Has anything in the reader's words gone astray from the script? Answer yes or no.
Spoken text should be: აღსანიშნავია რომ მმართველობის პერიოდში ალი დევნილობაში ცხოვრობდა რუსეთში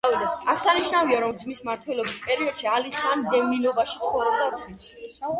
yes